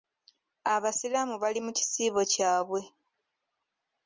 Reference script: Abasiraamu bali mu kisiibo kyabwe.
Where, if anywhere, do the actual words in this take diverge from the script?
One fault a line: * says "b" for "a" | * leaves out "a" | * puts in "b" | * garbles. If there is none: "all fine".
all fine